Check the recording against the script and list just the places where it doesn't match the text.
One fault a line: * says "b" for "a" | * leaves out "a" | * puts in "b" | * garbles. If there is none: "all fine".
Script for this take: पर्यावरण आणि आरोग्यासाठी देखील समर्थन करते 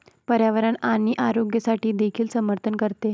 all fine